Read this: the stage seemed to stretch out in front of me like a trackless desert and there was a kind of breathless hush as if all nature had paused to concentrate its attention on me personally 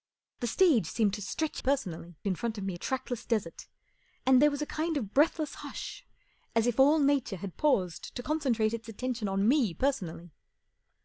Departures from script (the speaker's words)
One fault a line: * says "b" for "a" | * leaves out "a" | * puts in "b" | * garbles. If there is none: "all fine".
* says "personally" for "out"
* leaves out "like"